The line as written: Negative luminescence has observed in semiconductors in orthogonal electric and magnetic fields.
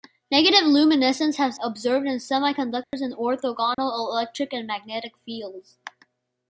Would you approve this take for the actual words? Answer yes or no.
yes